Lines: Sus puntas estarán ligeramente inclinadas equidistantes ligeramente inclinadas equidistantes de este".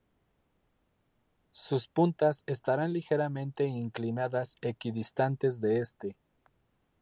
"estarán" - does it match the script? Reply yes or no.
yes